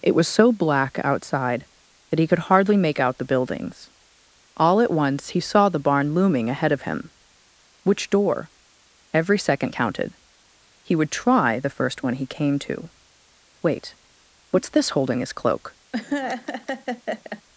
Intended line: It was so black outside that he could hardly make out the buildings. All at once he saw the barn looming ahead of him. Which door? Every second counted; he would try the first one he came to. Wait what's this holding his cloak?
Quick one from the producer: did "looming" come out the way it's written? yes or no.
yes